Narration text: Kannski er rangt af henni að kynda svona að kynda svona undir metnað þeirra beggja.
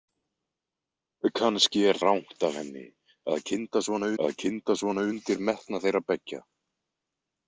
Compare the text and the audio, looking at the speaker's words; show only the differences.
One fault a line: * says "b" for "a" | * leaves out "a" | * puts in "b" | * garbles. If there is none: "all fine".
all fine